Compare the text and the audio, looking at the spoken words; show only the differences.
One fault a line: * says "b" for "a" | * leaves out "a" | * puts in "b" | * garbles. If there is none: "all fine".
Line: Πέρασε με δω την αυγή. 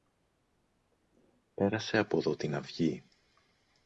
* says "από" for "με"